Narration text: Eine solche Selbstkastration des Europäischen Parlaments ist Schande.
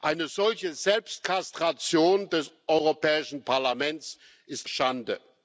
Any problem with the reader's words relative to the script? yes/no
no